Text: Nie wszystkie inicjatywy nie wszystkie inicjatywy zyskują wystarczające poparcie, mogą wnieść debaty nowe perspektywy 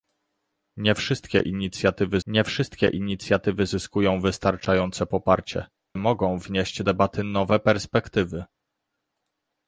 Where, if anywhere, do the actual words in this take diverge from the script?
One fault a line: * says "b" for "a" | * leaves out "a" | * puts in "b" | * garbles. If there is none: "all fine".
all fine